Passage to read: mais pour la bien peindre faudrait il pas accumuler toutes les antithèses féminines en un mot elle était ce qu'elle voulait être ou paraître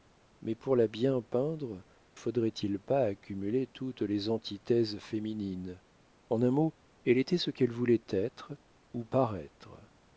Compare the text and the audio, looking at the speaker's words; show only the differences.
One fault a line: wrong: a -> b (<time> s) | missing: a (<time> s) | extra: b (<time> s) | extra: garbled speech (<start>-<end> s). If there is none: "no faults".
no faults